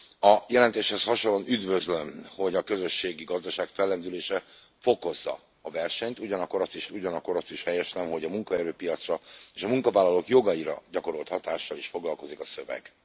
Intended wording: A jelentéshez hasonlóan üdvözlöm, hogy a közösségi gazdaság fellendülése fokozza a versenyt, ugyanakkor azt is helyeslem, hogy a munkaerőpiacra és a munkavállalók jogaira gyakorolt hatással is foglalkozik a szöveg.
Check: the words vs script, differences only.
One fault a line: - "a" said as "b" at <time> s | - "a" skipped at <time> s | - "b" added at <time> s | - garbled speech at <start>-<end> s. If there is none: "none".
- "ugyanakkor azt is" added at 6.9 s